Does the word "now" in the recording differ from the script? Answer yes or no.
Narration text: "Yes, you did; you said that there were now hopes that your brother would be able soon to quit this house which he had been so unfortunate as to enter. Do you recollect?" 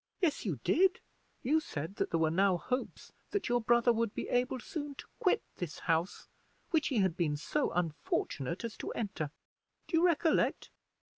no